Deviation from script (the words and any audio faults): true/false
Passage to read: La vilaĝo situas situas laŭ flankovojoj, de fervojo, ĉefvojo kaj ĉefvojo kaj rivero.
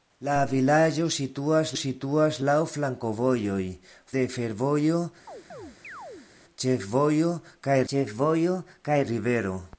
true